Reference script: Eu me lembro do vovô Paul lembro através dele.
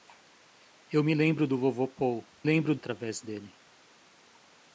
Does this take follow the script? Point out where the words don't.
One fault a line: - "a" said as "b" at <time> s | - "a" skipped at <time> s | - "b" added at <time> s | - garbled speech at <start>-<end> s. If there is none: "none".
none